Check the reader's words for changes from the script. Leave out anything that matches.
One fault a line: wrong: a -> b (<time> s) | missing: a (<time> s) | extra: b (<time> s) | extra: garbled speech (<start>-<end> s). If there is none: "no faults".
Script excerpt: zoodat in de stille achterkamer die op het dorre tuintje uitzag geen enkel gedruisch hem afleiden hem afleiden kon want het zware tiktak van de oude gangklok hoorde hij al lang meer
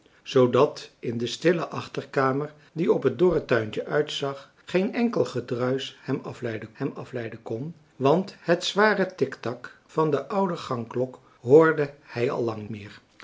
no faults